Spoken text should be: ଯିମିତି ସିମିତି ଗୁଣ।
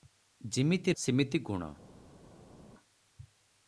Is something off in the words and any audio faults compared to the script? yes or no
no